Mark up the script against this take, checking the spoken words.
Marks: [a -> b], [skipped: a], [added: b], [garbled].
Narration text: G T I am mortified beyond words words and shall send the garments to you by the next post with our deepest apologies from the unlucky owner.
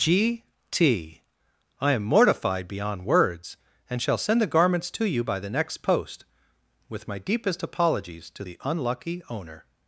G T I am mortified beyond words [skipped: words] and shall send the garments to you by the next post with [our -> my] deepest apologies [from -> to] the unlucky owner.